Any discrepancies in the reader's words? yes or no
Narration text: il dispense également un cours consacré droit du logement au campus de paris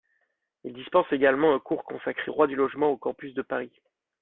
no